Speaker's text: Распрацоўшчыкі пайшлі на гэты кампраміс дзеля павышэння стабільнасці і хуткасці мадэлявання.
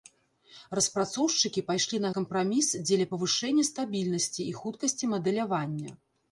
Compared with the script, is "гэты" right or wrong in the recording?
wrong